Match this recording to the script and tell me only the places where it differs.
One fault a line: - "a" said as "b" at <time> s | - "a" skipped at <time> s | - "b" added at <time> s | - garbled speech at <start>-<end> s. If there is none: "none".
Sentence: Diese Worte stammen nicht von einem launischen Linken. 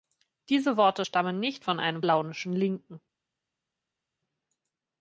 none